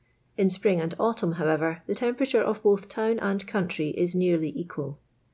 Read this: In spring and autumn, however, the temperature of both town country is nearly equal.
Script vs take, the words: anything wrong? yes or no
yes